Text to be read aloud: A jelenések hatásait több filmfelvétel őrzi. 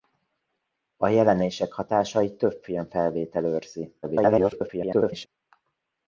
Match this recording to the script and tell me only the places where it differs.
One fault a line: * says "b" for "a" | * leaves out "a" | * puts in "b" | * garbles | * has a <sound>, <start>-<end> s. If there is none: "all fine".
* garbles